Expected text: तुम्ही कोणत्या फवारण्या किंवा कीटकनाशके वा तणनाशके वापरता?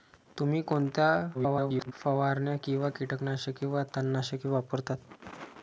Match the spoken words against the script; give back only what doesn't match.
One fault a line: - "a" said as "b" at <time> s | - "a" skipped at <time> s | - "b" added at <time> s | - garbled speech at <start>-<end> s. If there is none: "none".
- garbled speech at 1.3-1.9 s